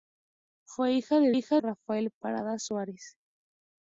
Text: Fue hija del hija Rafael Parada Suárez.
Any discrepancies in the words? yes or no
no